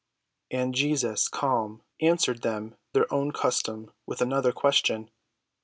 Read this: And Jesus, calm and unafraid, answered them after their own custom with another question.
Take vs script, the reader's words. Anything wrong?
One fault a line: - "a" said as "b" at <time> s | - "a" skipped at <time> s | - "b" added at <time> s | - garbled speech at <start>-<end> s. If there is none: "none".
- "and unafraid" skipped at 1.8 s
- "after" skipped at 2.8 s